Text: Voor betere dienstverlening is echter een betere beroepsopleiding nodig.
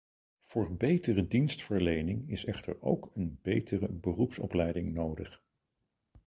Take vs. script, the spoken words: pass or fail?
fail